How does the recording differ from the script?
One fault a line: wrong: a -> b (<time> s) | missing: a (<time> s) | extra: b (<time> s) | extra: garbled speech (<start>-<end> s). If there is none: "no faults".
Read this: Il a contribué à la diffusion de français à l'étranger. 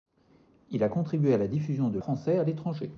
no faults